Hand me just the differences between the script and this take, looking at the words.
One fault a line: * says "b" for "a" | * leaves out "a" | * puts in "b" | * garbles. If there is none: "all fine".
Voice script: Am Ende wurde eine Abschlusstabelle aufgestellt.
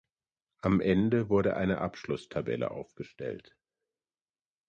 all fine